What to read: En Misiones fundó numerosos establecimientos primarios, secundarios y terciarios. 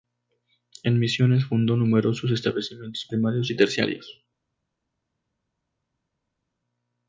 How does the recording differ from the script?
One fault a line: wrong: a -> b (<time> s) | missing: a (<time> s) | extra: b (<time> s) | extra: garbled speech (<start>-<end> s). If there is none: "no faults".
missing: secundarios (3.5 s)